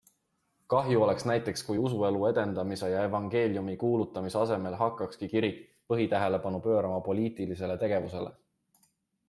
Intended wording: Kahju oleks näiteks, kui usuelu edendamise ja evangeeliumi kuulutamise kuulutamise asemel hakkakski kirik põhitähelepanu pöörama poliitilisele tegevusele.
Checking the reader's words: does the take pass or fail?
fail